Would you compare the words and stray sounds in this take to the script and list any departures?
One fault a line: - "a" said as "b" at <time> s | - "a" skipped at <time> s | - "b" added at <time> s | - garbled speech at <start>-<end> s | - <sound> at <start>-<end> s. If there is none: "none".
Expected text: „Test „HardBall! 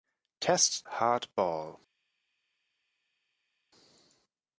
none